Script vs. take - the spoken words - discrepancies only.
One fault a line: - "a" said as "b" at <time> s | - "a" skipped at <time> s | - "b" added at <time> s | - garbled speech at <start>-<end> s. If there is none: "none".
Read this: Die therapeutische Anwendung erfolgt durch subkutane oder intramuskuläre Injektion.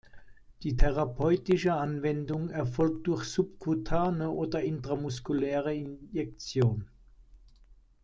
none